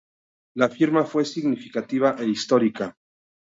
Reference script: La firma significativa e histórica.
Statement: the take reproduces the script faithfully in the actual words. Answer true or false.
false